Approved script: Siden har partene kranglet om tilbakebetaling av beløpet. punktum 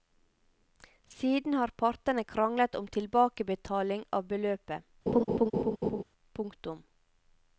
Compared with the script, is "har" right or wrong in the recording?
right